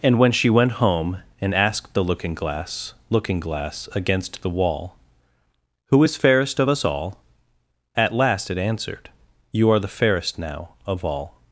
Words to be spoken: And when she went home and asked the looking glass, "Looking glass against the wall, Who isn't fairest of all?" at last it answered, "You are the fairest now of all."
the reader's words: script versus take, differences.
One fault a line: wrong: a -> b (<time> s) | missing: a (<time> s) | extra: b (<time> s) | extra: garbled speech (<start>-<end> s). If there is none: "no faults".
wrong: isn't -> is (6.0 s)
extra: us (6.7 s)